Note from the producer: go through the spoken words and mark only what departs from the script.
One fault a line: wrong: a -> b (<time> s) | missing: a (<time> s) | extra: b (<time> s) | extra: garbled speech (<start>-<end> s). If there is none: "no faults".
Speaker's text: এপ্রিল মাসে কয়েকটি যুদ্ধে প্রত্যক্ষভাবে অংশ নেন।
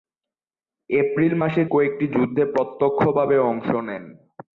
no faults